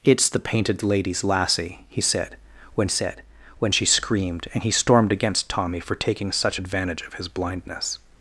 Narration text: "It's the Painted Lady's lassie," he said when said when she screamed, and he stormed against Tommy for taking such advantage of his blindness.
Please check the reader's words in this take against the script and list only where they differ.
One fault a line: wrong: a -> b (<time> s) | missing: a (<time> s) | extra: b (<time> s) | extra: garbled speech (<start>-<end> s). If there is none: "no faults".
no faults